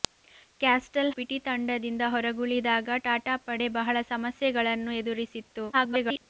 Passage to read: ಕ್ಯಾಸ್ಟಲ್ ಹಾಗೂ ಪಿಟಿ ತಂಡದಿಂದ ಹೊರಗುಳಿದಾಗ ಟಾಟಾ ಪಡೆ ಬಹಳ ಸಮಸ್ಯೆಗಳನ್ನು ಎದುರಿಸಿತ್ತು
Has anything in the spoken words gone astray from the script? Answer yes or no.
yes